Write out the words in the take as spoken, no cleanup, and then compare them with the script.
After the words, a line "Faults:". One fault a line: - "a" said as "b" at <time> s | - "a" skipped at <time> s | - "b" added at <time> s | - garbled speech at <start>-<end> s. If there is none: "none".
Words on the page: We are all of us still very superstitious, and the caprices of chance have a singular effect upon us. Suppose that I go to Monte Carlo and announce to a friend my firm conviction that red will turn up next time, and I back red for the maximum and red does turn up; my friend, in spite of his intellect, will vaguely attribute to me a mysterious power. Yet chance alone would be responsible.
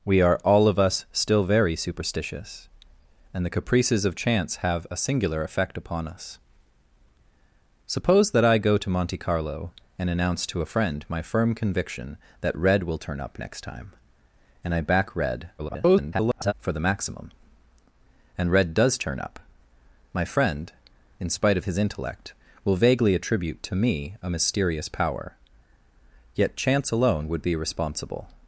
We are all of us still very superstitious, and the caprices of chance have a singular effect upon us. Suppose that I go to Monte Carlo and announce to a friend my firm conviction that red will turn up next time, and I back red [garbled] for the maximum and red does turn up; my friend, in spite of his intellect, will vaguely attribute to me a mysterious power. Yet chance alone would be responsible.
Faults:
- garbled speech at 15.6-16.5 s